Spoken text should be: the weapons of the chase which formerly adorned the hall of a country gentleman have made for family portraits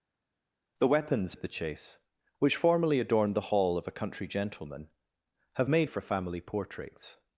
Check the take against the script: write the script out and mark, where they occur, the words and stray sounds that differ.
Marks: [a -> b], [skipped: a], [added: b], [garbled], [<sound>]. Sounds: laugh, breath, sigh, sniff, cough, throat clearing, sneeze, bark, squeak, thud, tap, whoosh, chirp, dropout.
the weapons of the chase which formerly adorned the hall of a country gentleman have made for family portraits